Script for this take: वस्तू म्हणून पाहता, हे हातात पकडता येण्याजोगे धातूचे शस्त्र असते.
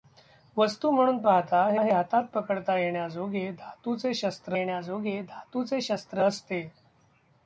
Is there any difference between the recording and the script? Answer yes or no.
yes